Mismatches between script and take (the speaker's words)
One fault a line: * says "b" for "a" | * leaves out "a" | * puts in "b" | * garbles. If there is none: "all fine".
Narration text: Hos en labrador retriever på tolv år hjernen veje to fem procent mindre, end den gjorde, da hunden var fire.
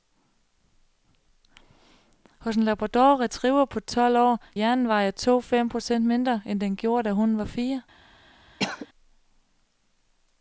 all fine